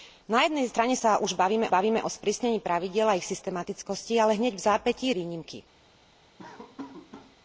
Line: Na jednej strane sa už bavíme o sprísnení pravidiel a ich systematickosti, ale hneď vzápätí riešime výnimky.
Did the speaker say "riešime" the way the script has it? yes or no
no